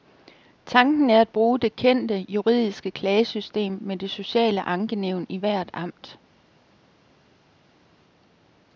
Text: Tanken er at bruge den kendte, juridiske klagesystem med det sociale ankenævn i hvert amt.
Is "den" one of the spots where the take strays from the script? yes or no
yes